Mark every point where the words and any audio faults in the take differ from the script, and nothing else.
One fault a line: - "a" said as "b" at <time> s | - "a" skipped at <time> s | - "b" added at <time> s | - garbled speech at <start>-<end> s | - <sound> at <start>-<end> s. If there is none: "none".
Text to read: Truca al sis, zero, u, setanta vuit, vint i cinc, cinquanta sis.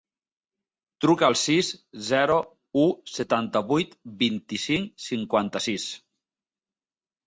none